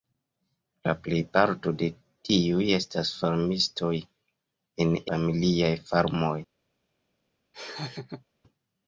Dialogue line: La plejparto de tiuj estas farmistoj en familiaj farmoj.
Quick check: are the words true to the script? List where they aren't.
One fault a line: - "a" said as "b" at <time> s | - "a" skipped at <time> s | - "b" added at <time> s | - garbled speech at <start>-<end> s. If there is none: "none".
none